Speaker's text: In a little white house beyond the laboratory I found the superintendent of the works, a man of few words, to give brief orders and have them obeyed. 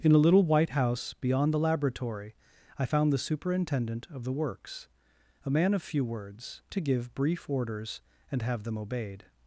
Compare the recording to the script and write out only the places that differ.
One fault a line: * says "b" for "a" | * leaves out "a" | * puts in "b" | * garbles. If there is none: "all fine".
all fine